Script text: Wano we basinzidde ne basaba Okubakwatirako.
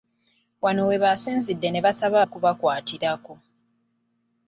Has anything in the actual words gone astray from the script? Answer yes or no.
no